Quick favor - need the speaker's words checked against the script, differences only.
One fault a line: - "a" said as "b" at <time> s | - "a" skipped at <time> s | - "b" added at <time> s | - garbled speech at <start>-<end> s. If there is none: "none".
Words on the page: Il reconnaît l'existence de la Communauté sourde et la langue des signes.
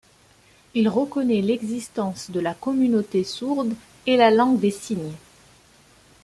none